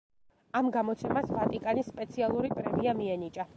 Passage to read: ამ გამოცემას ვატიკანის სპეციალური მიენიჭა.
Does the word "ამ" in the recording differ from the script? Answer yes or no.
no